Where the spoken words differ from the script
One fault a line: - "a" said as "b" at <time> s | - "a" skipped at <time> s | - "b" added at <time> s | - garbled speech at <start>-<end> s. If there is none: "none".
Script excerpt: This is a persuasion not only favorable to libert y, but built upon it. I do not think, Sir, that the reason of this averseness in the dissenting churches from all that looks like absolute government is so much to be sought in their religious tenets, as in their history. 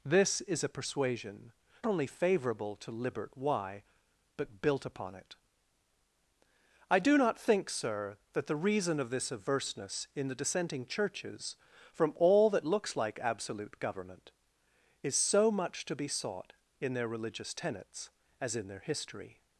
- "not" skipped at 1.5 s